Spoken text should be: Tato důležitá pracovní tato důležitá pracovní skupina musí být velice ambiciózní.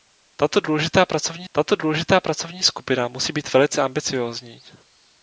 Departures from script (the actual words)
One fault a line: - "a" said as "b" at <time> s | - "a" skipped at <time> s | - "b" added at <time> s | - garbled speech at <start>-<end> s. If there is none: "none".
none